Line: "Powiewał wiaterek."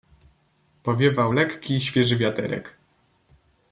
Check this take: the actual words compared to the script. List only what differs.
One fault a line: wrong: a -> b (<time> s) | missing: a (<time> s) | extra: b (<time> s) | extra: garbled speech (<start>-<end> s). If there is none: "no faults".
extra: lekki świeży (1.3 s)